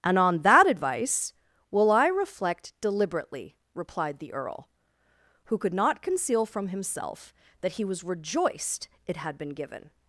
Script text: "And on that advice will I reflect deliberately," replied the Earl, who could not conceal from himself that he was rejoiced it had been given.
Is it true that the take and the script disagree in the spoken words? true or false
false